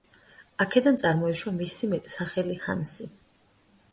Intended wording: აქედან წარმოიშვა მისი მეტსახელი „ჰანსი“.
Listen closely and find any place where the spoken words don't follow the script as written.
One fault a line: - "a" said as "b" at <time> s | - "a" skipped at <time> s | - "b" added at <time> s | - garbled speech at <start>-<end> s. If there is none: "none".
none